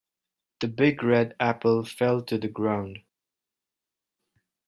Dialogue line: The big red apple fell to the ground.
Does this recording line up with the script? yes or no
yes